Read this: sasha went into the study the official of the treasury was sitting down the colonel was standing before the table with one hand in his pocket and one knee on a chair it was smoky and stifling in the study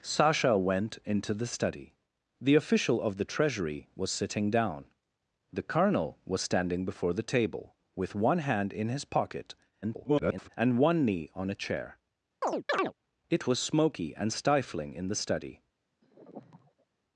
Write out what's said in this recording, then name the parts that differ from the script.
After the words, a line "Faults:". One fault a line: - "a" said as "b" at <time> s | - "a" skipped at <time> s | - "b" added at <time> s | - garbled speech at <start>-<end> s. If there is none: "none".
sasha went into the study the official of the treasury was sitting down the colonel was standing before the table with one hand in his pocket [garbled] and one knee on a chair it was smoky and stifling in the study
Faults:
- garbled speech at 9.8-10.5 s